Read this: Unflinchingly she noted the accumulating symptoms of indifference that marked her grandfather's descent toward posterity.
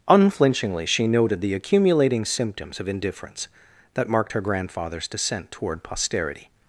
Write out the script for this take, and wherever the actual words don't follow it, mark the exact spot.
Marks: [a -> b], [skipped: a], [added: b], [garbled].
Unflinchingly she noted the accumulating symptoms of indifference that marked her grandfather's descent toward posterity.